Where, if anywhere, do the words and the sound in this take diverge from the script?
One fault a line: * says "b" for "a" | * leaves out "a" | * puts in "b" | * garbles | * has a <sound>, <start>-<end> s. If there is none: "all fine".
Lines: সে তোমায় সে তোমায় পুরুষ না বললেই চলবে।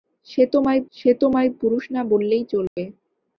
* has a dropout, 2.7-2.8 s